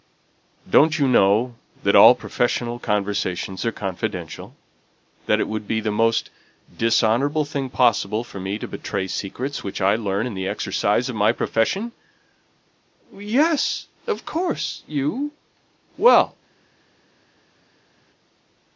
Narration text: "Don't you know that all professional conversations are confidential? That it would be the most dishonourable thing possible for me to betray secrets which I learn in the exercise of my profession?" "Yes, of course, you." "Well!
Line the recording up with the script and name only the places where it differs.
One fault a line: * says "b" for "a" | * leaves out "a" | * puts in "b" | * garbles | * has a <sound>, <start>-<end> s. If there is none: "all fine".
all fine